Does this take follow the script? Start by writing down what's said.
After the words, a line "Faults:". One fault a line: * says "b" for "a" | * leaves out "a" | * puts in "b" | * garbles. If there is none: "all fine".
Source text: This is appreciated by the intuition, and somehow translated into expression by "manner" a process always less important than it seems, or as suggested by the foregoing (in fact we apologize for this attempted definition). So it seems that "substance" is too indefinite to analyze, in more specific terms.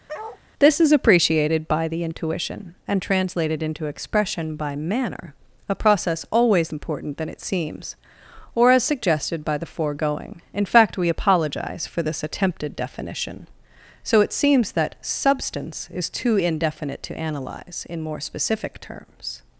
This is appreciated by the intuition, and translated into expression by "manner" a process always important than it seems, or as suggested by the foregoing (in fact we apologize for this attempted definition). So it seems that "substance" is too indefinite to analyze, in more specific terms.
Faults:
* leaves out "somehow"
* leaves out "less"